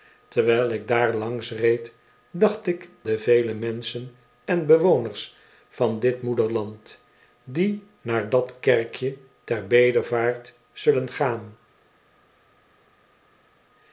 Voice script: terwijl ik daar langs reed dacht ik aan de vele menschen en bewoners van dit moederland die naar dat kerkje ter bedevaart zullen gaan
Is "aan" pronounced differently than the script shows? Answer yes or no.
yes